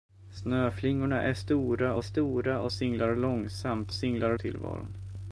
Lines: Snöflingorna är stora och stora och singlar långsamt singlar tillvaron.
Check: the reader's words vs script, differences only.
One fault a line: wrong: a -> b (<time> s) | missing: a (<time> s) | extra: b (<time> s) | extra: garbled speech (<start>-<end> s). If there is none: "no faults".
no faults